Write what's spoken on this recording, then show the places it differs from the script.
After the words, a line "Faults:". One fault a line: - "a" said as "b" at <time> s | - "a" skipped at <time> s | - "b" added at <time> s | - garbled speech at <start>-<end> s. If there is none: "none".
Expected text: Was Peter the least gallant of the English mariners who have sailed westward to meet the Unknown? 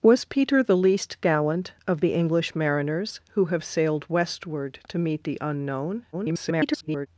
Was Peter the least gallant of the English mariners who have sailed westward to meet the Unknown? [garbled]
Faults:
- garbled speech at 6.1-7.1 s